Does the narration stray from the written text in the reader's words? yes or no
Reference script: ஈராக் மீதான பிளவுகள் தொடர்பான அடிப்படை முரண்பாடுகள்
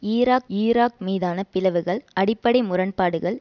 yes